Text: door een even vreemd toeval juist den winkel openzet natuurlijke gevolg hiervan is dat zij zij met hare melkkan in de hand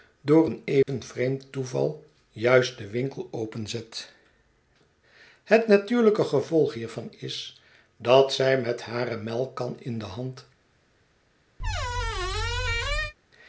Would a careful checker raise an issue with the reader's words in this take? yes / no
yes